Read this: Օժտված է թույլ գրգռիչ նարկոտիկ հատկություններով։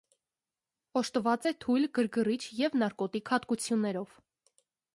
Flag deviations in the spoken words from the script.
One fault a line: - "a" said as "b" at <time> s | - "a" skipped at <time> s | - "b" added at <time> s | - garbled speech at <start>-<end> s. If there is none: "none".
- "և" added at 2.6 s